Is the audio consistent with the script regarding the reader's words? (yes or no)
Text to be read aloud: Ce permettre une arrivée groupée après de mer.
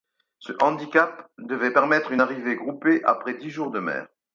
no